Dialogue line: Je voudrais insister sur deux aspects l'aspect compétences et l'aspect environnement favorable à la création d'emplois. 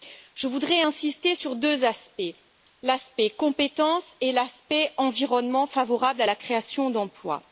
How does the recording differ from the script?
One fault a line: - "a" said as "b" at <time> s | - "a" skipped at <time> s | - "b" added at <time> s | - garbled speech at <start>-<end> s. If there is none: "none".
none